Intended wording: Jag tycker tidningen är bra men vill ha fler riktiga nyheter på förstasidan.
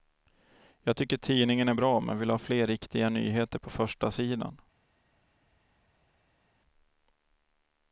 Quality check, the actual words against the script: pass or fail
pass